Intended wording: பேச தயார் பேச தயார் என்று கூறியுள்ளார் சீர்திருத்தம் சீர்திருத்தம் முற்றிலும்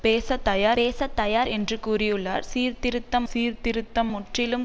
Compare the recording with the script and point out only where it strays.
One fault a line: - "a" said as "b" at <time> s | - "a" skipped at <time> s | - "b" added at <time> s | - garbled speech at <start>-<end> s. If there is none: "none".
none